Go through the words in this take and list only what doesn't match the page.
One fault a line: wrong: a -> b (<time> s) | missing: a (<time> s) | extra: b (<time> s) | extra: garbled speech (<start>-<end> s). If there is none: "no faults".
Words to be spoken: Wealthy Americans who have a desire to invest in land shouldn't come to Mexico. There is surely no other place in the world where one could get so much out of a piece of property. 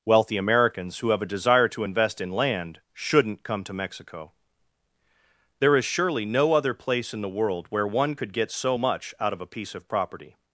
no faults